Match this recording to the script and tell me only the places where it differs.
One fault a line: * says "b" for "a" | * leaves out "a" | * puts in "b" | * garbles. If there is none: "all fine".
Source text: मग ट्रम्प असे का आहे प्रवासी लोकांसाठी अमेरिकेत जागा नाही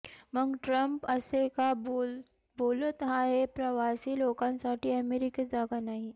* puts in "बोलत"